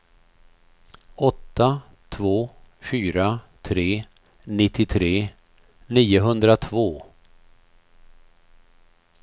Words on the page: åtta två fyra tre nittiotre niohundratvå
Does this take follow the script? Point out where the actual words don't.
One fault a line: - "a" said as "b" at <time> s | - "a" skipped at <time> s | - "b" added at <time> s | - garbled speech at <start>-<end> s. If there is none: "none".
none